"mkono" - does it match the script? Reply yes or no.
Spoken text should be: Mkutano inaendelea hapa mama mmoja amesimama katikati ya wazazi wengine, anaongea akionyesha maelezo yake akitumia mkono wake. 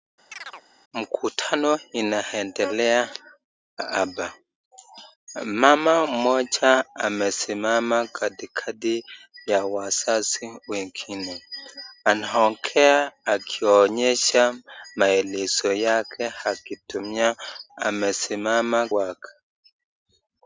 no